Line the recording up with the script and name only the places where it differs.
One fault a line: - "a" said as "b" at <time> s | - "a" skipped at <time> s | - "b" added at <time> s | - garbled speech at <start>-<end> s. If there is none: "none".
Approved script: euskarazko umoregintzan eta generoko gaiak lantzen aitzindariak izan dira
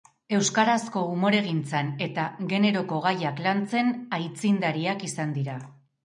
none